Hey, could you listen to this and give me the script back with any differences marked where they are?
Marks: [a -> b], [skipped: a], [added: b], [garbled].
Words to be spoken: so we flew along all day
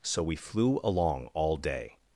so we flew along all day